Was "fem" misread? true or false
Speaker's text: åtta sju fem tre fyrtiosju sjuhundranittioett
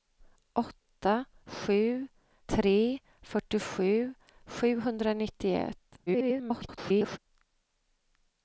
true